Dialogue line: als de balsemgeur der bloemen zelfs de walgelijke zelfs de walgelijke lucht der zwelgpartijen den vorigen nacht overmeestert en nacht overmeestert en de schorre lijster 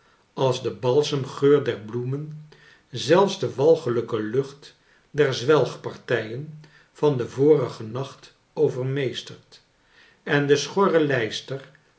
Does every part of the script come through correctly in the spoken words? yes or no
no